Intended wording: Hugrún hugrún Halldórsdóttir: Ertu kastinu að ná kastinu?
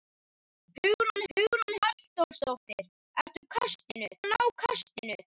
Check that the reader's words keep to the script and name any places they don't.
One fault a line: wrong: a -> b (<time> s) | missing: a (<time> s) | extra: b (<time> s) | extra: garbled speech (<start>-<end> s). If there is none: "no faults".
no faults